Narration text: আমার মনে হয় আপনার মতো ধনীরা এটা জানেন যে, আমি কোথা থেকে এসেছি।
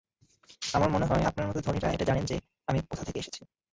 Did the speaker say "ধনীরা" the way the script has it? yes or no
yes